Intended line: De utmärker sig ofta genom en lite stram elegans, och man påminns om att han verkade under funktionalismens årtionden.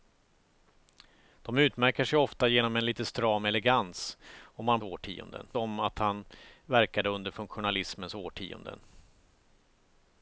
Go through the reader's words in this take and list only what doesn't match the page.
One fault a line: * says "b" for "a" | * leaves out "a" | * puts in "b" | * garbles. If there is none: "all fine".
* says "årtionden" for "påminns"